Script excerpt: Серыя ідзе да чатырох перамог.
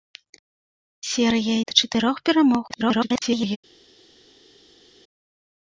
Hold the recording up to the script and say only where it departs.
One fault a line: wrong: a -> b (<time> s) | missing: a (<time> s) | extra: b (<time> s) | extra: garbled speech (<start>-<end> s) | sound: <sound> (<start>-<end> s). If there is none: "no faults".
missing: ідзе (1.6 s)
extra: garbled speech (2.7-3.6 s)